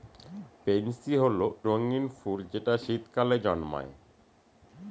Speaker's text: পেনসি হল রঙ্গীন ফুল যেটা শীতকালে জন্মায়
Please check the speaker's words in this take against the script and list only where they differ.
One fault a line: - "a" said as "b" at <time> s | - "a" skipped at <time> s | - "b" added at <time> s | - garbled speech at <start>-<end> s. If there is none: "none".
none